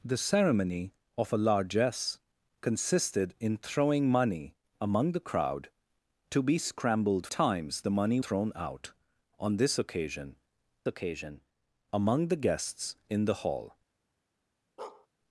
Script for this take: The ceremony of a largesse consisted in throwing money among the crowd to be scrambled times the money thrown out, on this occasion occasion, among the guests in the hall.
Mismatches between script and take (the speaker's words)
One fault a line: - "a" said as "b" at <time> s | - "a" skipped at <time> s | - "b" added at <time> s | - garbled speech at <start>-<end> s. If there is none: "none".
none